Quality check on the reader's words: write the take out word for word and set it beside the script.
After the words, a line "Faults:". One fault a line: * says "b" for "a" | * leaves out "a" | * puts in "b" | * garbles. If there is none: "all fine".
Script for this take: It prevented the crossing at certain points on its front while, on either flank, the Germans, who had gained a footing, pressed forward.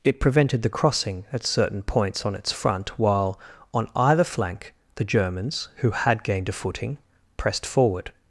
It prevented the crossing at certain points on its front while, on either flank, the Germans, who had gained a footing, pressed forward.
Faults:
all fine